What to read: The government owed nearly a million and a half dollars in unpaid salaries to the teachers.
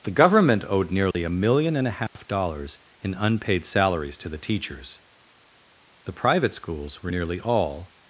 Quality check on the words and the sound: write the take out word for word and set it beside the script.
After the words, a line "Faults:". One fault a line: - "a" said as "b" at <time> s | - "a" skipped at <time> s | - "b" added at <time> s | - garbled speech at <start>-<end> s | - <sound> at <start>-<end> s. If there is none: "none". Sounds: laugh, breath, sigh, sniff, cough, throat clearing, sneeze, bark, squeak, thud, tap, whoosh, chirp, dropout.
The government owed nearly a million and a half dollars in unpaid salaries to the teachers. The private schools were nearly all
Faults:
- dropout at 1.1-1.1 s
- dropout at 2.1-2.2 s
- "The private schools were nearly all" added at 6.0 s